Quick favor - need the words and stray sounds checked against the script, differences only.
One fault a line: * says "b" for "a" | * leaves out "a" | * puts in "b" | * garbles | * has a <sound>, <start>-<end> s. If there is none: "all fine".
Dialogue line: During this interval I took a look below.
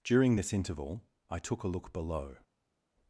all fine